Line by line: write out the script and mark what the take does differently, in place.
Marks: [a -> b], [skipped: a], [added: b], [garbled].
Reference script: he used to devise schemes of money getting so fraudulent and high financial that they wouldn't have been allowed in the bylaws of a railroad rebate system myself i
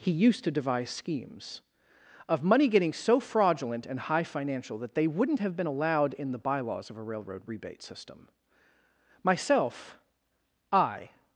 he used to devise schemes of money getting so fraudulent and high financial that they wouldn't have been allowed in the bylaws of a railroad rebate system myself i